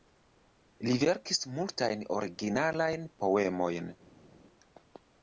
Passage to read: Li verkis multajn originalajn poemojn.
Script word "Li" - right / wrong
right